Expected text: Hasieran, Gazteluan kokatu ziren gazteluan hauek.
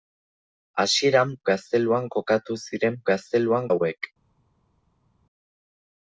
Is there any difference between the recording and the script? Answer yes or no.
no